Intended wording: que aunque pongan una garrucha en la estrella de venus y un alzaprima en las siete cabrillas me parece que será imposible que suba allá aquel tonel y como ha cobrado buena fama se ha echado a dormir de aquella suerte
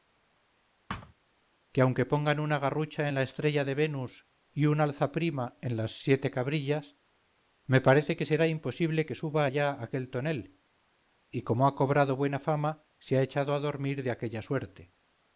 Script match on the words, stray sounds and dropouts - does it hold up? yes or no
no